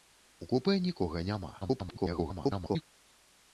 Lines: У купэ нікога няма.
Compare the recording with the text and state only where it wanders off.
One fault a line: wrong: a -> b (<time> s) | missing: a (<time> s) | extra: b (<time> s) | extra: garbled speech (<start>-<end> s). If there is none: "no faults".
extra: garbled speech (1.6-2.8 s)